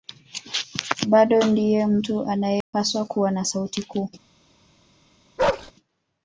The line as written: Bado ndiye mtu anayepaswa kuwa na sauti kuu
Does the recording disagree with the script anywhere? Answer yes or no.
no